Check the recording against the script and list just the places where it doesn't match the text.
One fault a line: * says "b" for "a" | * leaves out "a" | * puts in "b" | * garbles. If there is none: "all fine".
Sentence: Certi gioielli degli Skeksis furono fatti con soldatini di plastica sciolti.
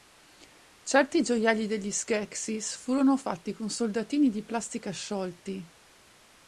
all fine